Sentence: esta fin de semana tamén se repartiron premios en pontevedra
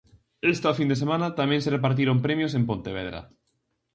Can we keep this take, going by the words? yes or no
yes